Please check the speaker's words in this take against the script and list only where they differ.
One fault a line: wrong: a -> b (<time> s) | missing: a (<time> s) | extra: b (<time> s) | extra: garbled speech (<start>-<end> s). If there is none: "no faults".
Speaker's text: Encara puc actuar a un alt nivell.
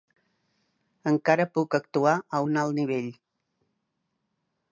no faults